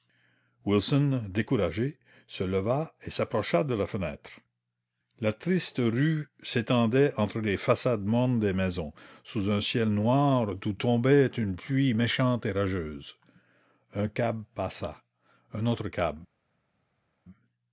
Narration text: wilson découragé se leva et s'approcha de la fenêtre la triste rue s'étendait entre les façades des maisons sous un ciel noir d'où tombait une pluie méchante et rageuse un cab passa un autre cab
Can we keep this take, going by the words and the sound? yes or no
no